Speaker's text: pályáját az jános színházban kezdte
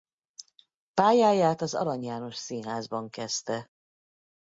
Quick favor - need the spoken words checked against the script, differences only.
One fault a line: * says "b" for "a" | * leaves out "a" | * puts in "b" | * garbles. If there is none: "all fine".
* puts in "arany"